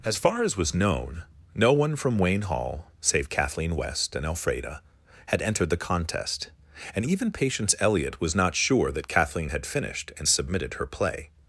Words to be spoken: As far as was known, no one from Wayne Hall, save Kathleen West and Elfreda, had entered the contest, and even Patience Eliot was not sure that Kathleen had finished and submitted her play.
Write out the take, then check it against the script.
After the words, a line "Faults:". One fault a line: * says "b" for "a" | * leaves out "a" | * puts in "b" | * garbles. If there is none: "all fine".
As far as was known, no one from Wayne Hall, save Kathleen West and Elfreda, had entered the contest, and even Patience Eliot was not sure that Kathleen had finished and submitted her play.
Faults:
all fine